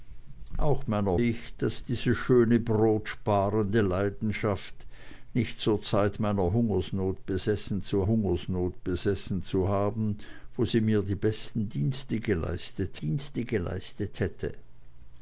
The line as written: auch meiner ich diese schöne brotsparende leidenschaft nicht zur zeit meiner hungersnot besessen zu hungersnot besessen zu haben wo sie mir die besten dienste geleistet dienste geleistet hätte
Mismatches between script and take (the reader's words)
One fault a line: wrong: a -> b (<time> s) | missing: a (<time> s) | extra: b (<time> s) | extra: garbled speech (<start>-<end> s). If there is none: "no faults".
no faults